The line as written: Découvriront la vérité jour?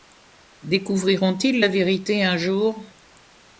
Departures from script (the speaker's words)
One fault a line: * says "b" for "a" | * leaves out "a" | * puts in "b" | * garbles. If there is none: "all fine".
* puts in "ils"
* puts in "un"